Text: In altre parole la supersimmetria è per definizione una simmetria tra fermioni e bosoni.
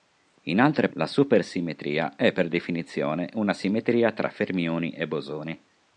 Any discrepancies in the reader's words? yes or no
yes